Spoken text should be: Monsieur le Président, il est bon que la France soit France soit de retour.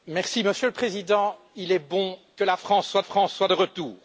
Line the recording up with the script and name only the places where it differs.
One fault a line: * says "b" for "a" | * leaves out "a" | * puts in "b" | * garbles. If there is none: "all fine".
all fine